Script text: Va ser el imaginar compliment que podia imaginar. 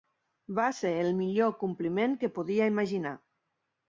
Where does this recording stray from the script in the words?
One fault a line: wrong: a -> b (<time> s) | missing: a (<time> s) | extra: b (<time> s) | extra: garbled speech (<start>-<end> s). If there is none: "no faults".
wrong: imaginar -> millor (1.2 s)